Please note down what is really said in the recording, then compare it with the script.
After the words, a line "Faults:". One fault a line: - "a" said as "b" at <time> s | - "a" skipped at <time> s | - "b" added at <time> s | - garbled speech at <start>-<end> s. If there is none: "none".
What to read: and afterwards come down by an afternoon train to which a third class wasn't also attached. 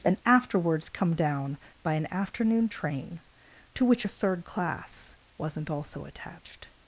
and afterwards come down by an afternoon train to which a third class wasn't also attached.
Faults:
none